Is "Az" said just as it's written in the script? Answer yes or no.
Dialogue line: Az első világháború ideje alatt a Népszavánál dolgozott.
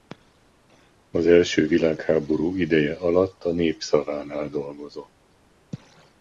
yes